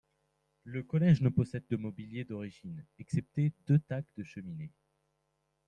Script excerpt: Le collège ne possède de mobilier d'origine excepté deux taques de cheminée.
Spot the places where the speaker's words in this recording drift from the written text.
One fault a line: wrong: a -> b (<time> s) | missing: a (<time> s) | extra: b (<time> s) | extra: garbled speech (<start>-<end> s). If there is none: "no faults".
no faults